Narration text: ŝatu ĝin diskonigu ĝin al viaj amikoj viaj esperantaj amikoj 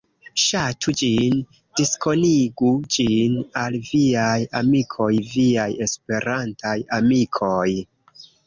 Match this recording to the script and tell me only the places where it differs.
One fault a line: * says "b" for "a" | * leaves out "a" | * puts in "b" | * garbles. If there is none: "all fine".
all fine